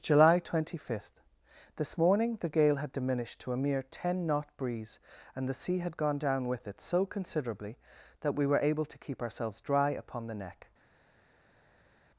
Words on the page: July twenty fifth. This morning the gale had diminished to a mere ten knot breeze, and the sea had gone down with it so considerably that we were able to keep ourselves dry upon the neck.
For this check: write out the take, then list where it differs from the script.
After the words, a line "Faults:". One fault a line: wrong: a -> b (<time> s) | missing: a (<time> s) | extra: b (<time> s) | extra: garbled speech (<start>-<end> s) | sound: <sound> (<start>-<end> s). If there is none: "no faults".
July twenty fifth. This morning the gale had diminished to a mere ten knot breeze, and the sea had gone down with it so considerably that we were able to keep ourselves dry upon the neck.
Faults:
no faults